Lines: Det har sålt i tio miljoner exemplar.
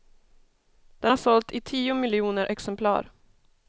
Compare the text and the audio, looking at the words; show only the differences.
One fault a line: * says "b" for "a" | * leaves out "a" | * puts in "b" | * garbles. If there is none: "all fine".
* says "Den" for "Det"